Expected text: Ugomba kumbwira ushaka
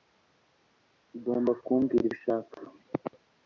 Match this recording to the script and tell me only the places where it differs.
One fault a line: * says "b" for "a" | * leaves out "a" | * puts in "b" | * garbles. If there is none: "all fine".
all fine